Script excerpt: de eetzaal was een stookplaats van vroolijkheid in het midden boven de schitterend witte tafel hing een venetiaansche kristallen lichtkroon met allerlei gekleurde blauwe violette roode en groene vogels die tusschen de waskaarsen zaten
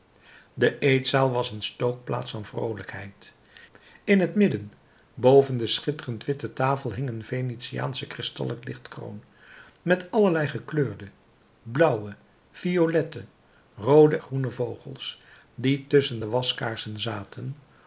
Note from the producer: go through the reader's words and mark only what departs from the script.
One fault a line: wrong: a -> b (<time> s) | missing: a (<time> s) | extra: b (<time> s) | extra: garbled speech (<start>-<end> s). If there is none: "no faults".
missing: en (14.2 s)